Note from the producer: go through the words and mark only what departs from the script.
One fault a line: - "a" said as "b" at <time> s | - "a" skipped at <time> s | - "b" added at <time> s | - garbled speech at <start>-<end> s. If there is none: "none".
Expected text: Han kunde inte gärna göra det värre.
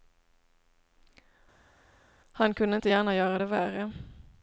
none